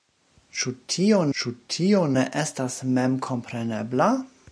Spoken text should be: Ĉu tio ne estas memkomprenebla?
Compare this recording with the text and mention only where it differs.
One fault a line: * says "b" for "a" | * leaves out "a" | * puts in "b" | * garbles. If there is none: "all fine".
* puts in "ĉu tio"